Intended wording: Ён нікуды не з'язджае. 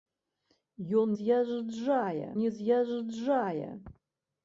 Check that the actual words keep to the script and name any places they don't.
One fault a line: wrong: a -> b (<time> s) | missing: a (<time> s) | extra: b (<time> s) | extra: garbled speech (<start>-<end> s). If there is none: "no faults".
wrong: нікуды -> з'язджае (1.2 s)